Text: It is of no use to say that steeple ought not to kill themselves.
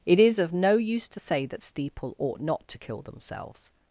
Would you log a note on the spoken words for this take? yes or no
no